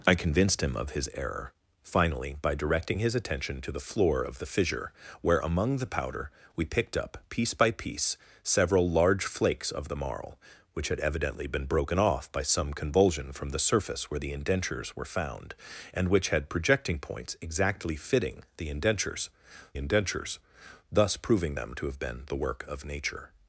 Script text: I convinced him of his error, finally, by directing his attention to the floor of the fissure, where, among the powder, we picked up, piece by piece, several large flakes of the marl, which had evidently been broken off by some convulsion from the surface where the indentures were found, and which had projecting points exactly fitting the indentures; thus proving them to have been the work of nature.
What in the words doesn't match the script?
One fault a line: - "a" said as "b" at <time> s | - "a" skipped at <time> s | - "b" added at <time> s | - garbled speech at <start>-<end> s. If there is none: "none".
- "indentures" added at 19.8 s